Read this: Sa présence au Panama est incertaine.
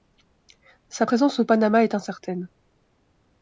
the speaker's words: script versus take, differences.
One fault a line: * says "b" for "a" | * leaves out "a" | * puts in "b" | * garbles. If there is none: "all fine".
all fine